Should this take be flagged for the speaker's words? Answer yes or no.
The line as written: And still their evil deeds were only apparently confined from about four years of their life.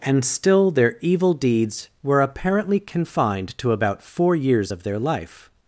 yes